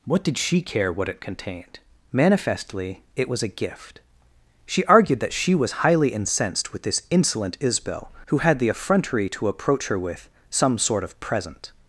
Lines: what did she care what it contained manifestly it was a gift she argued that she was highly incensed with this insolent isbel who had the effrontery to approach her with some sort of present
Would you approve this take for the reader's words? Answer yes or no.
yes